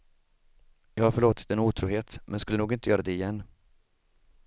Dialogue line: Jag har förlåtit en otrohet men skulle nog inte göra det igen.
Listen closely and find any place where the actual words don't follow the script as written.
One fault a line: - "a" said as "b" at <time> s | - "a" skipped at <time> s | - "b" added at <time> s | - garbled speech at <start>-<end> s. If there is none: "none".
none